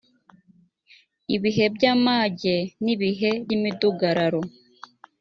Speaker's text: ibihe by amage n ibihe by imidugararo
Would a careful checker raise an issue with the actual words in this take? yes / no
yes